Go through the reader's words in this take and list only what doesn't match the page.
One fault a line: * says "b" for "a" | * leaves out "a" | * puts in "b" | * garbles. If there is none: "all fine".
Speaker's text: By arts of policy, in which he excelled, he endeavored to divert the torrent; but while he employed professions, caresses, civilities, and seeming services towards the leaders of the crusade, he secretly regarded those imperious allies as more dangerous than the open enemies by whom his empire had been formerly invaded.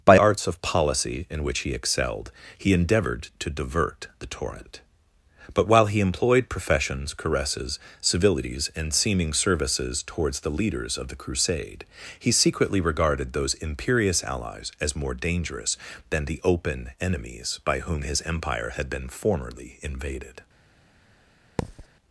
all fine